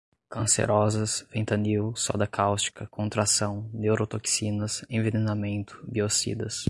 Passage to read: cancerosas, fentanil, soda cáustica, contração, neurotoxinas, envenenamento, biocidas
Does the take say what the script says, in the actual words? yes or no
yes